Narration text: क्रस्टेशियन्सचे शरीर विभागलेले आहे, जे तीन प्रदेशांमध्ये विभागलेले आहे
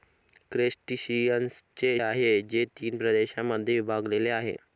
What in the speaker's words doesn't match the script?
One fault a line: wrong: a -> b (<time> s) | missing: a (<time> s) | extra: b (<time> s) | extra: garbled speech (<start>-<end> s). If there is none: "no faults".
missing: शरीर विभागलेले (1.9 s)